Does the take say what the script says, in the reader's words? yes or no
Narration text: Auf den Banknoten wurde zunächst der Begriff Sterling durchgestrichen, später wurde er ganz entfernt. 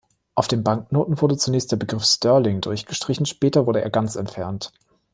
yes